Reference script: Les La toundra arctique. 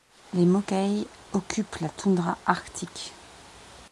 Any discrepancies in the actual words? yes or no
yes